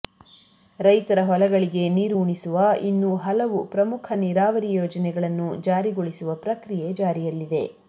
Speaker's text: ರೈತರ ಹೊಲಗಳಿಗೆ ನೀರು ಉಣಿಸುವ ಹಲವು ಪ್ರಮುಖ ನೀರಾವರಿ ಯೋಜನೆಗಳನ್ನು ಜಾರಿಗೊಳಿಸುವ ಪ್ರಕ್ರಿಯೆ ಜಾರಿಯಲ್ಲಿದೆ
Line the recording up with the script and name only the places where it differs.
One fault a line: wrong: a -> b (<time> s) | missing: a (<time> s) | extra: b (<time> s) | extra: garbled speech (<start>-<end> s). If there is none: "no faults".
extra: ಇನ್ನೂ (2.8 s)